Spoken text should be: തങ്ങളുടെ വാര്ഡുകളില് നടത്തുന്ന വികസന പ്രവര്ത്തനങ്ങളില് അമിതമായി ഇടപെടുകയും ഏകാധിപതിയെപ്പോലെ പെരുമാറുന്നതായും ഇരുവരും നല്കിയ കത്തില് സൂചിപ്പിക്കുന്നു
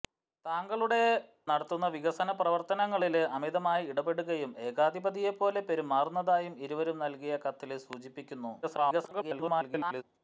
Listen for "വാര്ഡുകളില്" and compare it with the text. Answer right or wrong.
wrong